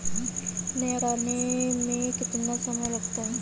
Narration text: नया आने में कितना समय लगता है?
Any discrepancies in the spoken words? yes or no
no